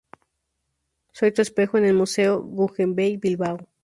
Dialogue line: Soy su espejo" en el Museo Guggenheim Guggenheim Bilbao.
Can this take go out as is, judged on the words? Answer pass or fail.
fail